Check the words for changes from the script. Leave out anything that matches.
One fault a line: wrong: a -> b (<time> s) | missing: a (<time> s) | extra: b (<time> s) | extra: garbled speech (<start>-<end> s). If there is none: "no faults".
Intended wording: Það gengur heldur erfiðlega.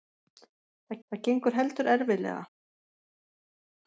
extra: það (1.1 s)